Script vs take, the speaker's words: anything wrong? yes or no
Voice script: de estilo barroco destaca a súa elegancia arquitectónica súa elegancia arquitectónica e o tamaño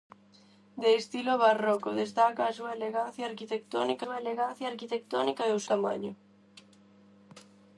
no